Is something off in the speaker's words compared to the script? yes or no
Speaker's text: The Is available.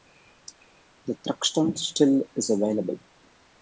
yes